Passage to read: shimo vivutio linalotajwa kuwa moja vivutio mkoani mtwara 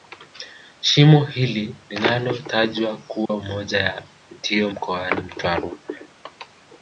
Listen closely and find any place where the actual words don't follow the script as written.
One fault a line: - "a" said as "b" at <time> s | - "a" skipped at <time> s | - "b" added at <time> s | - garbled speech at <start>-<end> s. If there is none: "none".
- "vivutio" said as "hili" at 1.2 s
- "ya" added at 3.8 s